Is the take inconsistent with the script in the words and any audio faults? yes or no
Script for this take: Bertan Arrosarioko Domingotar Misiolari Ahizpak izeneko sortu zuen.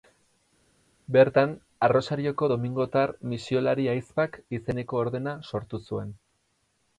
yes